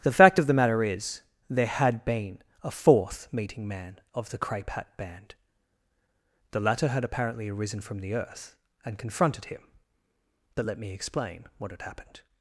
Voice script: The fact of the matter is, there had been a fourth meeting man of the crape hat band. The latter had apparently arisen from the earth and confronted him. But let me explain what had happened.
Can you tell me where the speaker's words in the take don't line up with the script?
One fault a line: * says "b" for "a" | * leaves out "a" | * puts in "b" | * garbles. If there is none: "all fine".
all fine